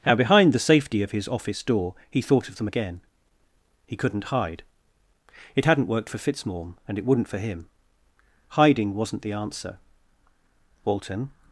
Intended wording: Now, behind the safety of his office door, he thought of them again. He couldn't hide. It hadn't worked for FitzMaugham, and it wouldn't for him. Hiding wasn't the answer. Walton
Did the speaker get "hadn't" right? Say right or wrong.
right